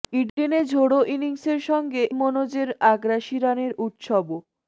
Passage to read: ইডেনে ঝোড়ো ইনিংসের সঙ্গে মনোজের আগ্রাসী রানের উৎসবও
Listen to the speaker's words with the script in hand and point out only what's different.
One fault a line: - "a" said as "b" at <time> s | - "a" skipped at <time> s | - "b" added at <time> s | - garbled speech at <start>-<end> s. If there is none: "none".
none